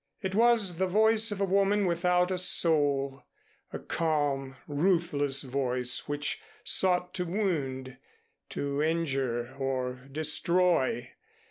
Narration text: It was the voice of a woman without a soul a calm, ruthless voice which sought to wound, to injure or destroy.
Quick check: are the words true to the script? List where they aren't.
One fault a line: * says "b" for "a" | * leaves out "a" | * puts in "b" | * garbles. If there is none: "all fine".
all fine